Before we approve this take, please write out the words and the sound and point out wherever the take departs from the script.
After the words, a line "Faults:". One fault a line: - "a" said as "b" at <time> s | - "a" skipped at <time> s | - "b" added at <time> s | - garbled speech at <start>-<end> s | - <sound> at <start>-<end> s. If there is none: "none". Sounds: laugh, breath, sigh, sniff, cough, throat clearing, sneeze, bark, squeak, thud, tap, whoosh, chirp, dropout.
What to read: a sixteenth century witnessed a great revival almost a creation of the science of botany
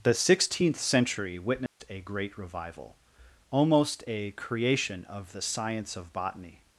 the sixteenth century witnessed a great revival almost a creation of the science of botany
Faults:
- "a" said as "the" at 0.0 s
- dropout at 1.7-1.8 s